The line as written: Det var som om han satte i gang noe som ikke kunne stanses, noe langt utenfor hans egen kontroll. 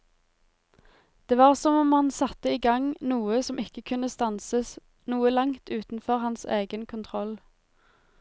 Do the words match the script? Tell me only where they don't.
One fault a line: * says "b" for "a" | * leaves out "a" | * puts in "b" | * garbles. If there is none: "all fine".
all fine